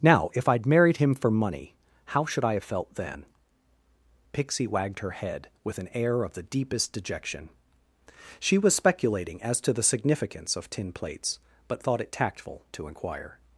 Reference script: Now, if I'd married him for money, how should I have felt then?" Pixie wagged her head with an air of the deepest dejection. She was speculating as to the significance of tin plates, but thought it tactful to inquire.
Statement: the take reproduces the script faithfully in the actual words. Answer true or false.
true